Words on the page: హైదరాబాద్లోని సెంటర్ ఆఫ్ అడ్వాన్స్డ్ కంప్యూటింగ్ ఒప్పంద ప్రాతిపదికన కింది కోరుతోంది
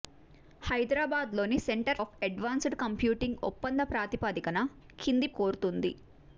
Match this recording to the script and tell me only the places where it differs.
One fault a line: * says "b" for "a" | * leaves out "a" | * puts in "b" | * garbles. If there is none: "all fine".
all fine